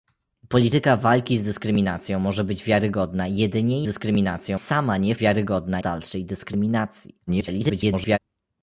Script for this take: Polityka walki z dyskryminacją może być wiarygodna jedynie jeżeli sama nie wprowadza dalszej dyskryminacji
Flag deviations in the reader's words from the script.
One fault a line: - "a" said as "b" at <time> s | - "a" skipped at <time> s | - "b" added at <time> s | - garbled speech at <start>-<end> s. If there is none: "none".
- "jeżeli" said as "dyskryminacją" at 3.8 s
- "wprowadza" said as "wiarygodna" at 5.2 s
- garbled speech at 7.3-8.2 s